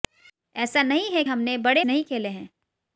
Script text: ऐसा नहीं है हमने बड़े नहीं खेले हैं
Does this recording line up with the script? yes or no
yes